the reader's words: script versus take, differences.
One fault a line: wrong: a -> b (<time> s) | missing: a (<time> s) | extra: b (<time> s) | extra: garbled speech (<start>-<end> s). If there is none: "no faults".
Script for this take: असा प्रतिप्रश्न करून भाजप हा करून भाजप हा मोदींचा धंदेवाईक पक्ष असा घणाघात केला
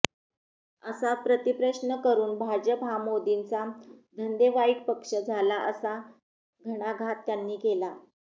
missing: करून भाजप हा (3.0 s)
extra: झाला (5.2 s)
extra: त्यांनी (7.3 s)